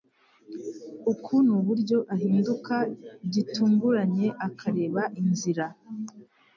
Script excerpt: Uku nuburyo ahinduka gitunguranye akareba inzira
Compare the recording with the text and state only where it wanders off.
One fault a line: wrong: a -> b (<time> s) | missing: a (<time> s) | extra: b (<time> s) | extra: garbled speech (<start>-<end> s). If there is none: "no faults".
no faults